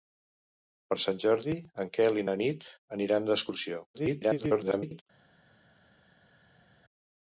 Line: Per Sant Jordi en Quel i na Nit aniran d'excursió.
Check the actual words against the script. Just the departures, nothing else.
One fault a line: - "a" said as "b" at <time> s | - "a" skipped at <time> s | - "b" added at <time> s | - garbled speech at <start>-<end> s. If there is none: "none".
- garbled speech at 3.9-5.0 s